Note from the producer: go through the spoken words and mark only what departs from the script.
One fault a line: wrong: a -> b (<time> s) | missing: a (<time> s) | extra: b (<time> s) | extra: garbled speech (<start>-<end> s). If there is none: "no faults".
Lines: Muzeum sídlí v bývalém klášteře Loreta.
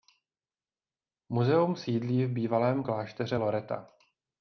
no faults